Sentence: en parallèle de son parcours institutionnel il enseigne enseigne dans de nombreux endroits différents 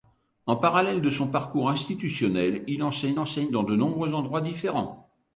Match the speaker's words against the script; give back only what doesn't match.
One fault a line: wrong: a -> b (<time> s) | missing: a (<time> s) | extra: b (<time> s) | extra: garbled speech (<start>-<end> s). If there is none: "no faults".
no faults